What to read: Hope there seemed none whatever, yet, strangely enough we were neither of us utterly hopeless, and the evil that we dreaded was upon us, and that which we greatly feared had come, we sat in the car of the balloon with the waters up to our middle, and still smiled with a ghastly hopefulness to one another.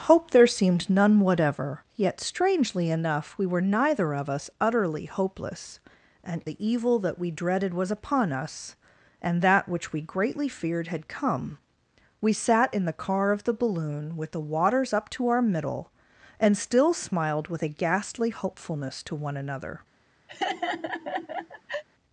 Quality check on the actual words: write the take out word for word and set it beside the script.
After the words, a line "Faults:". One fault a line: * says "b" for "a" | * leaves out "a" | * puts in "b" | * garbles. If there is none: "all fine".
Hope there seemed none whatever, yet, strangely enough we were neither of us utterly hopeless, and the evil that we dreaded was upon us, and that which we greatly feared had come, we sat in the car of the balloon with the waters up to our middle, and still smiled with a ghastly hopefulness to one another.
Faults:
all fine